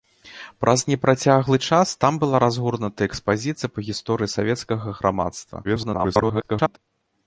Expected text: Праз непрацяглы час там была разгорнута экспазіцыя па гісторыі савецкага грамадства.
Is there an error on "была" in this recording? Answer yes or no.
no